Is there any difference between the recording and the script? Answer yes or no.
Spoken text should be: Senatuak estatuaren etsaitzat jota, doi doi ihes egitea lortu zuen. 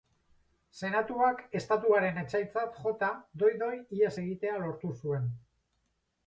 no